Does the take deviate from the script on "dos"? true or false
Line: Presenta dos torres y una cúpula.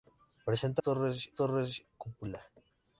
true